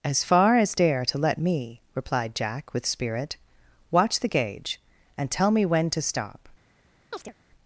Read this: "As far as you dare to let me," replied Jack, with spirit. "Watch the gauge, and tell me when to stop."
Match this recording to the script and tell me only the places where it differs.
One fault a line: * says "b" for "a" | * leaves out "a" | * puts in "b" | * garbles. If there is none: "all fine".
* leaves out "you"